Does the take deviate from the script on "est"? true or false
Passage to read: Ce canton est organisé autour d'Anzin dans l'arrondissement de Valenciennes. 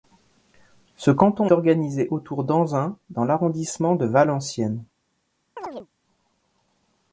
true